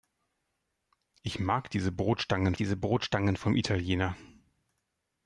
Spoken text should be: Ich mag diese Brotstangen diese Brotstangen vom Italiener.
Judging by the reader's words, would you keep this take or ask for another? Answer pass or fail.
pass